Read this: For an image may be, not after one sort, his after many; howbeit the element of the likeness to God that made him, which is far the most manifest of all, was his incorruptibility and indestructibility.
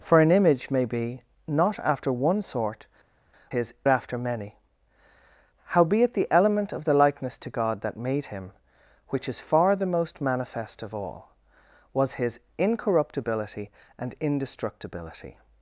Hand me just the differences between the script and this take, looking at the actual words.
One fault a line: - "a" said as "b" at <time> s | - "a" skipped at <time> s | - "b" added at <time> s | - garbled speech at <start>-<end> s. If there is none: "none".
none